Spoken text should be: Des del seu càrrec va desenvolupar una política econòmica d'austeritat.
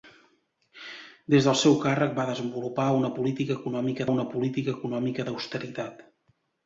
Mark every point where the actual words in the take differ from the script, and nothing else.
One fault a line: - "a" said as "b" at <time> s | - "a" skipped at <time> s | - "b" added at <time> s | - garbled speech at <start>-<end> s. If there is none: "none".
- "una política econòmica" added at 4.2 s